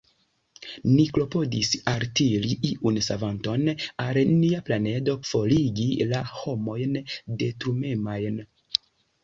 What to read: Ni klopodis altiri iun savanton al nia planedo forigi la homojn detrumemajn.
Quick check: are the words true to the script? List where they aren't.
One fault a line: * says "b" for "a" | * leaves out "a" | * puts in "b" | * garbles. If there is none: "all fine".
all fine